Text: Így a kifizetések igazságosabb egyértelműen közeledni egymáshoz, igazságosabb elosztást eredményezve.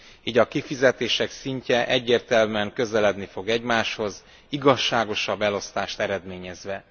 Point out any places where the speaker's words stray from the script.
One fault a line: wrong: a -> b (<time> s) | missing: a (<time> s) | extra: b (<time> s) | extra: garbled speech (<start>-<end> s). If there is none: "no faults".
wrong: igazságosabb -> szintje (1.3 s)
extra: fog (3.2 s)